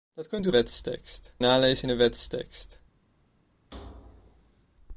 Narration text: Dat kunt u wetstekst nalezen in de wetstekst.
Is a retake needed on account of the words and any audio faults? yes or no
yes